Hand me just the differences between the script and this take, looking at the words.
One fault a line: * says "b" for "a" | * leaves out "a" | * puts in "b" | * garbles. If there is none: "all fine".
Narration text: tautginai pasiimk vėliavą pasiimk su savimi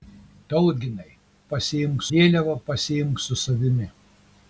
all fine